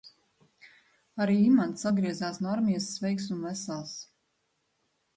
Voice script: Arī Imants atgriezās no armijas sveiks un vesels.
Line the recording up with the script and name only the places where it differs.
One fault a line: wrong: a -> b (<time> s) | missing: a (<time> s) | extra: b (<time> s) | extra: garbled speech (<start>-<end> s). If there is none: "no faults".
no faults